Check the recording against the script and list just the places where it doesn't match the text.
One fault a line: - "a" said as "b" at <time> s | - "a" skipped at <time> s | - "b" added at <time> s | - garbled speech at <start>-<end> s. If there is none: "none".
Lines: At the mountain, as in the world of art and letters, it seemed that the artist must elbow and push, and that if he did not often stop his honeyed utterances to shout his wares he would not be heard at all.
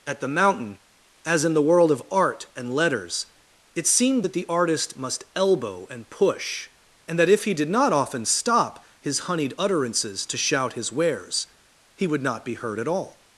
none